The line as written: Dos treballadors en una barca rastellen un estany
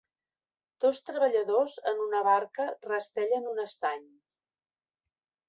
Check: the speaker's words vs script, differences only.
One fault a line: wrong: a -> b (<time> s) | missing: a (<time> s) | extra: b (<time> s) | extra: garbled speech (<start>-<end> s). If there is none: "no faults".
no faults